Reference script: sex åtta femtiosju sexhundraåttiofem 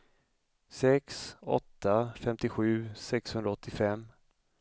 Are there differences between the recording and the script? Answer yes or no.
no